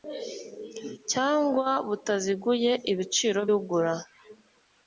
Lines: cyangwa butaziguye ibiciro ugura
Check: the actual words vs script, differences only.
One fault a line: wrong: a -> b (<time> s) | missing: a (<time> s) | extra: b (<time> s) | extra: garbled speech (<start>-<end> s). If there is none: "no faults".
no faults